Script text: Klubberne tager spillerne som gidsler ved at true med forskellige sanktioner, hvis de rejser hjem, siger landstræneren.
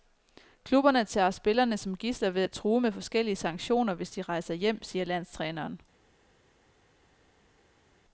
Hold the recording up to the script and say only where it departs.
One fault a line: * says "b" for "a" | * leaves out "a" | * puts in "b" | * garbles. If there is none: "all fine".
all fine